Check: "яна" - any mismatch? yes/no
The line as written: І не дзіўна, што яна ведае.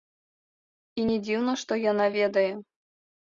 no